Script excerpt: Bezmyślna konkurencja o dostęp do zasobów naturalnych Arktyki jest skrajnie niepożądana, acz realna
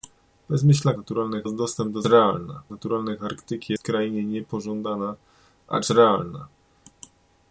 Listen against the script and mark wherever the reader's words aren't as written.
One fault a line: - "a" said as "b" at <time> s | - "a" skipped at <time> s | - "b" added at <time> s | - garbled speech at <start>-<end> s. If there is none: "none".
- "konkurencja" said as "naturalnych" at 0.9 s
- "zasobów" said as "realna" at 2.0 s
- "jest" skipped at 3.7 s